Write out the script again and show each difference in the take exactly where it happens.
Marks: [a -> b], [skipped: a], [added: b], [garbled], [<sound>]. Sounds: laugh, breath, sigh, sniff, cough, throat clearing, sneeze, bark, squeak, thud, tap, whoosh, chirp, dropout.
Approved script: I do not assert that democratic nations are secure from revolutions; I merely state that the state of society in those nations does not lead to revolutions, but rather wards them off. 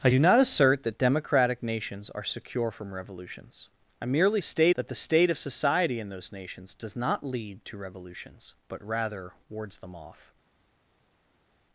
I do not assert that democratic nations are secure from revolutions; I merely state that the state of society in those nations does not lead to revolutions, but rather wards them off.